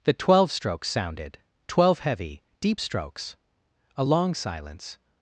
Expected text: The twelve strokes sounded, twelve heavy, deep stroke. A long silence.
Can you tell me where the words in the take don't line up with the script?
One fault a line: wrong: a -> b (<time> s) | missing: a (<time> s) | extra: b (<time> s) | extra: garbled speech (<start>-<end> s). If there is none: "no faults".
wrong: stroke -> strokes (2.8 s)